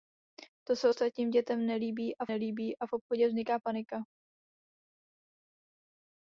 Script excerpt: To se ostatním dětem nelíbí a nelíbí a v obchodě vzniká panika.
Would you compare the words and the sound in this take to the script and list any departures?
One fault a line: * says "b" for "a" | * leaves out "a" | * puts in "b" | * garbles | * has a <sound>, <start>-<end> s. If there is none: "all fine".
all fine